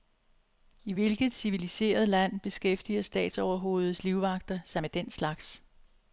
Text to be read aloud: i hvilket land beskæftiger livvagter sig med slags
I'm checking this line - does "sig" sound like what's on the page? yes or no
yes